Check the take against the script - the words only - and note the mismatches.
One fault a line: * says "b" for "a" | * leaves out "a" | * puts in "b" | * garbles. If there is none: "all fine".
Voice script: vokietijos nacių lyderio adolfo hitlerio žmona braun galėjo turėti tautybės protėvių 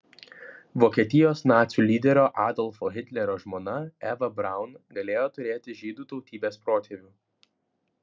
* puts in "eva"
* puts in "žydų"